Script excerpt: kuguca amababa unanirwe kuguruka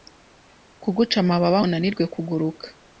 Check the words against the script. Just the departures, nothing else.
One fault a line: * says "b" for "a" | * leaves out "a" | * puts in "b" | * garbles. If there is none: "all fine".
all fine